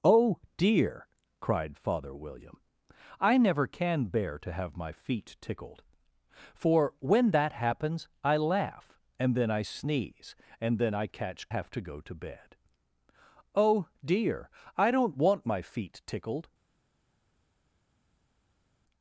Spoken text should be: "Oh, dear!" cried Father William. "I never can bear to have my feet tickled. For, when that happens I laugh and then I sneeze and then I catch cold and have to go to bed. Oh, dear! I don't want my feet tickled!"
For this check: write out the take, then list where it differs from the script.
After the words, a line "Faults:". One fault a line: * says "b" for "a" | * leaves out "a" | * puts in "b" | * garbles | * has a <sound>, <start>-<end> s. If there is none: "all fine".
"Oh, dear!" cried Father William. "I never can bear to have my feet tickled. For, when that happens I laugh and then I sneeze and then I catch have to go to bed. Oh, dear! I don't want my feet tickled!"
Faults:
* leaves out "cold and"